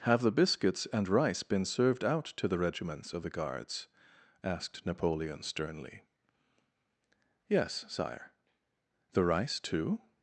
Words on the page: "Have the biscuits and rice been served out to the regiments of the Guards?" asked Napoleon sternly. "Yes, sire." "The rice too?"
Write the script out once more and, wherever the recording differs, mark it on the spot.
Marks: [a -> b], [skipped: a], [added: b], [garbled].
"Have the biscuits and rice been served out to the regiments of the Guards?" asked Napoleon sternly. "Yes, sire." "The rice too?"